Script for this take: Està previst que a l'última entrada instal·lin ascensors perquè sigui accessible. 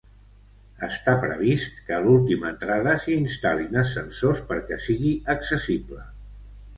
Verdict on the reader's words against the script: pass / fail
fail